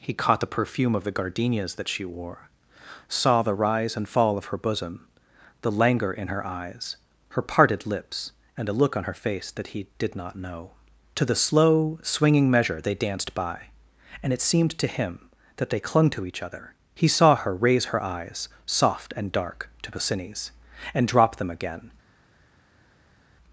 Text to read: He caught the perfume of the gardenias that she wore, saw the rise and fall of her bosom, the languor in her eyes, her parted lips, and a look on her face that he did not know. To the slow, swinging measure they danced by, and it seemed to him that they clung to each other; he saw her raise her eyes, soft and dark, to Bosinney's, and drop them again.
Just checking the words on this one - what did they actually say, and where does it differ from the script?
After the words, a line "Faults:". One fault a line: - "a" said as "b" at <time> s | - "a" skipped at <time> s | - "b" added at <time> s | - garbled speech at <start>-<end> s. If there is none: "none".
He caught the perfume of the gardenias that she wore, saw the rise and fall of her bosom, the languor in her eyes, her parted lips, and a look on her face that he did not know. To the slow, swinging measure they danced by, and it seemed to him that they clung to each other; he saw her raise her eyes, soft and dark, to Bosinney's, and drop them again.
Faults:
none